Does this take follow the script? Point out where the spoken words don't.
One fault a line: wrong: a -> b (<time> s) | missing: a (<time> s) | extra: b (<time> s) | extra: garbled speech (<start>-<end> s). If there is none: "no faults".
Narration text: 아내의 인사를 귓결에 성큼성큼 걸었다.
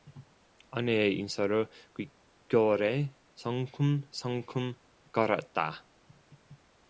no faults